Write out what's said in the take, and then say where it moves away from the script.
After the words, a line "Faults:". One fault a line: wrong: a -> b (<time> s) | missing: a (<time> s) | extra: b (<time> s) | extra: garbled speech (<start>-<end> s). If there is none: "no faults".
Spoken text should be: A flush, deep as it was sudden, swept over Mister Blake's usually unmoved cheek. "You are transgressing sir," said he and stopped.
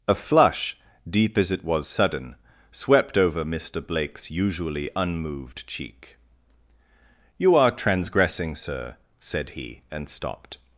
A flush, deep as it was sudden, swept over Mister Blake's usually unmoved cheek. "You are transgressing sir," said he and stopped.
Faults:
no faults